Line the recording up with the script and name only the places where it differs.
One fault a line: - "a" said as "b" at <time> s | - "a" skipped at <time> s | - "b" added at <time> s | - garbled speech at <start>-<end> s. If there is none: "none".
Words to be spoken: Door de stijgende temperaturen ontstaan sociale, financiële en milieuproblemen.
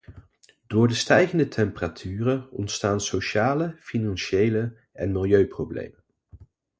none